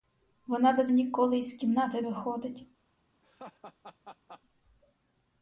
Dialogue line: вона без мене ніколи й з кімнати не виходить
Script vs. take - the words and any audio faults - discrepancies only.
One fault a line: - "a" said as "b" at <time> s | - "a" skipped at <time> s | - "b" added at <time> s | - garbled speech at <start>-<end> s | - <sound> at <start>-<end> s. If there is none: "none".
- "мене" skipped at 0.9 s
- "не" skipped at 2.0 s
- laugh at 3.2-4.4 s